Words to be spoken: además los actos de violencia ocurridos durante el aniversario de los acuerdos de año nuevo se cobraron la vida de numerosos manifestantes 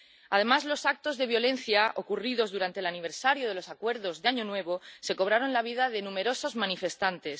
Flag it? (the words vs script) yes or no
no